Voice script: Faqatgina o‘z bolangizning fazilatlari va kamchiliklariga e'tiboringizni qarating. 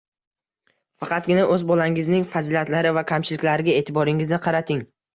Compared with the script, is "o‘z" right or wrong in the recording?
right